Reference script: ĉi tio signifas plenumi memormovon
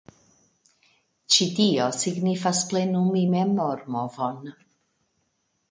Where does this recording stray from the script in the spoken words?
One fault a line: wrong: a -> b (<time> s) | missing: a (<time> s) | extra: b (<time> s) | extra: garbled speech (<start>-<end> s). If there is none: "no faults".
no faults